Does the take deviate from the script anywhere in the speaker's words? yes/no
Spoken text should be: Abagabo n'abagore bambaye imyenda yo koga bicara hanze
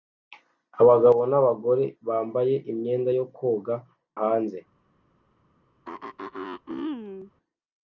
yes